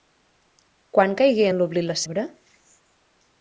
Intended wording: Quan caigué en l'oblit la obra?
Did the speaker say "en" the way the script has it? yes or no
yes